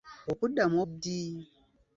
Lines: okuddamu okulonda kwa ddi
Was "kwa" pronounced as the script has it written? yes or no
no